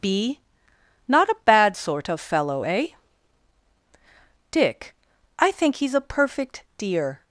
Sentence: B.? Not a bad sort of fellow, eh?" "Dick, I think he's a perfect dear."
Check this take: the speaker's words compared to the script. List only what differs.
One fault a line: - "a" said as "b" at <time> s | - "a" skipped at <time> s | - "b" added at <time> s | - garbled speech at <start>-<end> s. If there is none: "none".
none